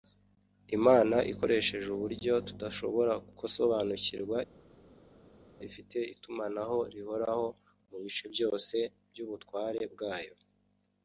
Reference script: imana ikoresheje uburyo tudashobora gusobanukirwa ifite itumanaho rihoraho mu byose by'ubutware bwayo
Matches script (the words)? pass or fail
fail